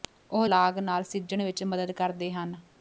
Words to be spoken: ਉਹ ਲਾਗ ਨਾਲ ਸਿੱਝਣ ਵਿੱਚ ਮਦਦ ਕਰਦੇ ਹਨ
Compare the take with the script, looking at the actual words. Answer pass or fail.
pass